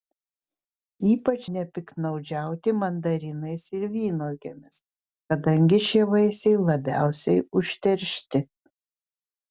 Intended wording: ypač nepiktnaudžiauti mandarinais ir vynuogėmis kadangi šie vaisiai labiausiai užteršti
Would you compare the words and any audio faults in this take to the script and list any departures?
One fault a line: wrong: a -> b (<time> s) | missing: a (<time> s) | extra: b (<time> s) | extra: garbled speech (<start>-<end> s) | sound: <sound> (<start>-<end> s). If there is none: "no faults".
no faults